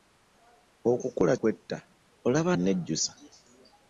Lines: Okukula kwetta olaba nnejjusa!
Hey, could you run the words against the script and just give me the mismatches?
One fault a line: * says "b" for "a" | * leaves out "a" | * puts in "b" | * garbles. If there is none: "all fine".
all fine